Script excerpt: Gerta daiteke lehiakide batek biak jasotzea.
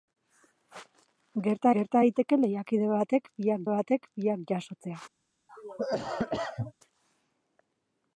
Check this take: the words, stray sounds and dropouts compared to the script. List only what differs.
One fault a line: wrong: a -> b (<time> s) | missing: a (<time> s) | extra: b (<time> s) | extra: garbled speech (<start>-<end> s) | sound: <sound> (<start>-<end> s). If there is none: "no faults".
extra: gerta (1.8 s)
extra: batek biak (3.7 s)
sound: cough (5.5-6.7 s)